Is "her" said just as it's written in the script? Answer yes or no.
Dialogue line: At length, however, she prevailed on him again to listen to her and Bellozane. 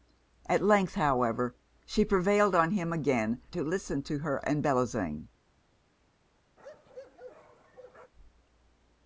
yes